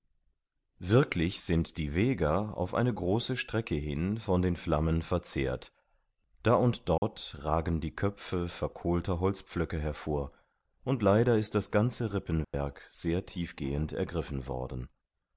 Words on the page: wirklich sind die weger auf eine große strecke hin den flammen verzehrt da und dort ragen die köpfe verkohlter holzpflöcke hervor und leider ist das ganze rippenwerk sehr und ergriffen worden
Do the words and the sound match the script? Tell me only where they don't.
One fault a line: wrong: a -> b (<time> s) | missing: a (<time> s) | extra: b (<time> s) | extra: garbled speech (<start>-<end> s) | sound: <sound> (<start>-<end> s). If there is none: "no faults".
extra: von (4.2 s)
sound: dropout (7.0-7.0 s)
sound: dropout (12.4-12.5 s)
wrong: und -> tiefgehend (13.3 s)